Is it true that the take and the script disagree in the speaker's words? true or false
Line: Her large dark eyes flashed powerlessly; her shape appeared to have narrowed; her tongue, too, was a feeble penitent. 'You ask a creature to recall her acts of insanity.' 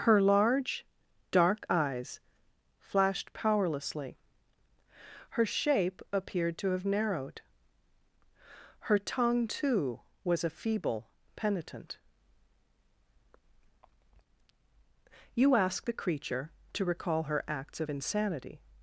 true